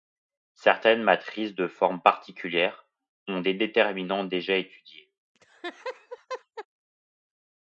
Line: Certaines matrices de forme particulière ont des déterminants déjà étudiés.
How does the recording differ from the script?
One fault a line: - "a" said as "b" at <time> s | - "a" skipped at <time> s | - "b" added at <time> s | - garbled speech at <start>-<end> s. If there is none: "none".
none